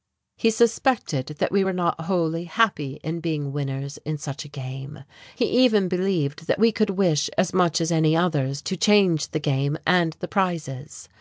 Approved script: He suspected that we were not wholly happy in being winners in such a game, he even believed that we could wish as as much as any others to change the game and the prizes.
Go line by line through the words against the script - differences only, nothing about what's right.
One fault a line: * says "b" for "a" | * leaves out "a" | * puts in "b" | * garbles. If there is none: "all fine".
* leaves out "as"